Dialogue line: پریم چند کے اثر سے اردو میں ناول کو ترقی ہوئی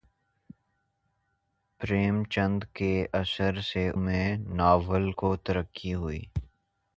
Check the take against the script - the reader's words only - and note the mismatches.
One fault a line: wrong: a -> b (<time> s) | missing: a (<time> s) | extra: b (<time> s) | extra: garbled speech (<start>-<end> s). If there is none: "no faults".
missing: اردو (3.9 s)